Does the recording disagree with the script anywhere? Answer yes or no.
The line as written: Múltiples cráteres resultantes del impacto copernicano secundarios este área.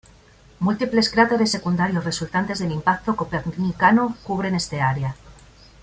yes